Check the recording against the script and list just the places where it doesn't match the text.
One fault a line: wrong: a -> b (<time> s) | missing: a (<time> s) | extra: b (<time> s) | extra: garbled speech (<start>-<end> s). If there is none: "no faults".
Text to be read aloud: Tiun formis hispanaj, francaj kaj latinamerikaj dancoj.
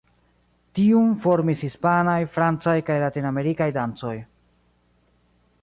no faults